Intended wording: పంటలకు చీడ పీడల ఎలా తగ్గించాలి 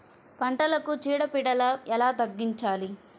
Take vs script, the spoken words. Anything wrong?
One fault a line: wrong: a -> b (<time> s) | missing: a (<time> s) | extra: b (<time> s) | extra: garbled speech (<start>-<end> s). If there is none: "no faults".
no faults